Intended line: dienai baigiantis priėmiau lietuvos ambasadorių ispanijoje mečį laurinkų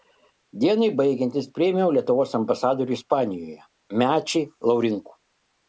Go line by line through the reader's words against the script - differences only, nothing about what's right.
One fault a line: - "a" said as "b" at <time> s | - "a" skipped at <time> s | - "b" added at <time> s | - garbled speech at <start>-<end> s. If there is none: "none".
none